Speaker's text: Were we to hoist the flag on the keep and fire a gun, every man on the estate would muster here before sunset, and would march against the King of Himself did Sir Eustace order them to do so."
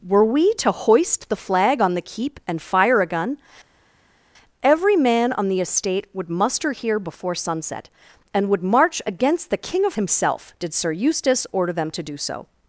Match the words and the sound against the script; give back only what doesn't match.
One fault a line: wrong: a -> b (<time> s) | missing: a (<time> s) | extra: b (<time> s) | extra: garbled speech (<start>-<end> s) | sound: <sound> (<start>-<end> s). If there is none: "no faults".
no faults